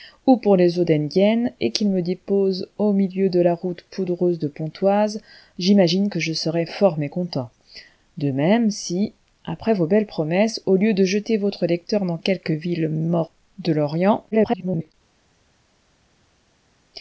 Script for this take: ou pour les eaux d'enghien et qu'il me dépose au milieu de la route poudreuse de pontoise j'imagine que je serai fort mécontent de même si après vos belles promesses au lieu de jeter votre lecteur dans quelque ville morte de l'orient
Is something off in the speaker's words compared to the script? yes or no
yes